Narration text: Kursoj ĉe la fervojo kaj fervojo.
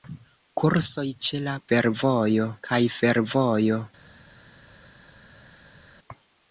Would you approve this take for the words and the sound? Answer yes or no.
yes